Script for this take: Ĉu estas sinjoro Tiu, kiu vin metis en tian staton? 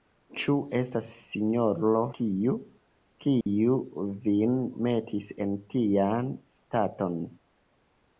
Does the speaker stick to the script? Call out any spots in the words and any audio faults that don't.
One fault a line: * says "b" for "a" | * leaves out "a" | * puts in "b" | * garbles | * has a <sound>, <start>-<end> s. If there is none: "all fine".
* has a dropout, 3.4-3.5 s